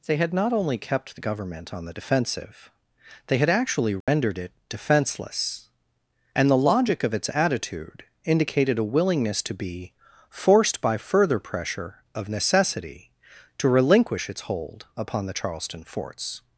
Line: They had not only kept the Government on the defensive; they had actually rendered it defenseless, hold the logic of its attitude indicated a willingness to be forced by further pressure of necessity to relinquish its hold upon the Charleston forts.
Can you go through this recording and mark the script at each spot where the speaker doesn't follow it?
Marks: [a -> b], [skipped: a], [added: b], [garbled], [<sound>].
They had not only kept the Government on the defensive; they had actually rendered [dropout] it defenseless, [hold -> and] the logic of its attitude indicated a willingness to be forced by further pressure of necessity to relinquish its hold upon the Charleston forts.